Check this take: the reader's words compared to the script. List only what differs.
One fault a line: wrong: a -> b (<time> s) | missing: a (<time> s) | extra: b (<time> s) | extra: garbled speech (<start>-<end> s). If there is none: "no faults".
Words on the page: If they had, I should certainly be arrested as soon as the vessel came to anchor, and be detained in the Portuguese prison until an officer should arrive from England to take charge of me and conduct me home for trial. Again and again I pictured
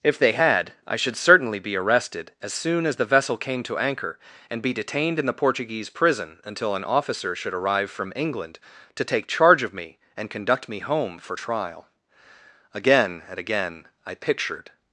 no faults